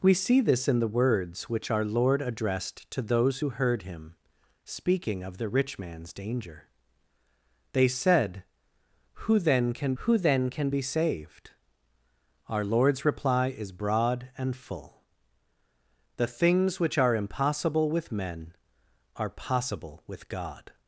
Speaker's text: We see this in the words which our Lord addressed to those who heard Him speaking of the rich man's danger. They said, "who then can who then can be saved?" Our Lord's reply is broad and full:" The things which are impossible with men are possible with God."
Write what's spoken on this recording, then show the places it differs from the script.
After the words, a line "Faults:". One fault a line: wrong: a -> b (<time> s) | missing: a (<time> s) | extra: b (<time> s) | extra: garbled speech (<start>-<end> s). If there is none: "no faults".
We see this in the words which our Lord addressed to those who heard Him speaking of the rich man's danger. They said, "who then can who then can be saved?" Our Lord's reply is broad and full:" The things which are impossible with men are possible with God."
Faults:
no faults